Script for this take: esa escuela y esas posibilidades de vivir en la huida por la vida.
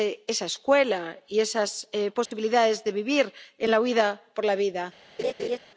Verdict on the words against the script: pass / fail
pass